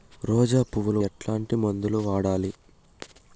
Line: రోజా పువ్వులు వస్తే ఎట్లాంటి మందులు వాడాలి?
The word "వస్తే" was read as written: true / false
false